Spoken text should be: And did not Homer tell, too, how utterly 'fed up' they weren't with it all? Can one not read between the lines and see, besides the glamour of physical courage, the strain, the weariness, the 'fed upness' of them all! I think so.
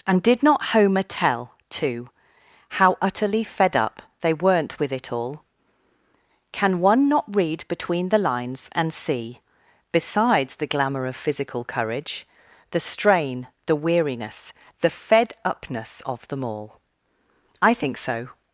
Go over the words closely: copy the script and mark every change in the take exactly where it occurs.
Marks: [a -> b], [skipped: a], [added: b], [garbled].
And did not Homer tell, too, how utterly 'fed up' they weren't with it all? Can one not read between the lines and see, besides the glamour of physical courage, the strain, the weariness, the 'fed upness' of them all! I think so.